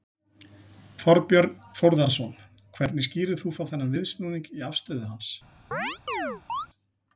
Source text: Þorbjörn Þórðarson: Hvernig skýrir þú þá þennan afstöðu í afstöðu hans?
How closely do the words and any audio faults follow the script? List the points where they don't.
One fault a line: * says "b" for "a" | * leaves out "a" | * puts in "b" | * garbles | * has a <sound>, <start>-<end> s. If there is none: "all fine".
* says "viðsnúning" for "afstöðu"
* has a chirp, 5.7-6.7 s